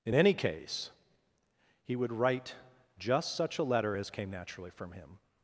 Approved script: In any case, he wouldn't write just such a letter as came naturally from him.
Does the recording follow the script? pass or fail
fail